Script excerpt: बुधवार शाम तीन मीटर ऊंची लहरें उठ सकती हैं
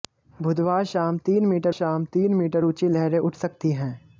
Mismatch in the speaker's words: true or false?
true